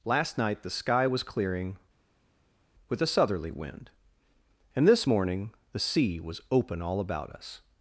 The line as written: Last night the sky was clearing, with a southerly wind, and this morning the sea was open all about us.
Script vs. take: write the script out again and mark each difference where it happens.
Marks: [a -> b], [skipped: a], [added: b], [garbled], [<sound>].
Last night the sky was clearing, with a southerly wind, and this morning the sea was open all about us.